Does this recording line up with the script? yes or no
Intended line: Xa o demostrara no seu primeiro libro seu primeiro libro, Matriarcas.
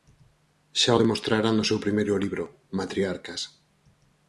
no